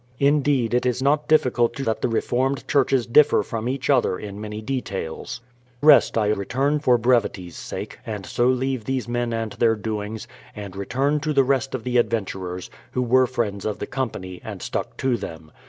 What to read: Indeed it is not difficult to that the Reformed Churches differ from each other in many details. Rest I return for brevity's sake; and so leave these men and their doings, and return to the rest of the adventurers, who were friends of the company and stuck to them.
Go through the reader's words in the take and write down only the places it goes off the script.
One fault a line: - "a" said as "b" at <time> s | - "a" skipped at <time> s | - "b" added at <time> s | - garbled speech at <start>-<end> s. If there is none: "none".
none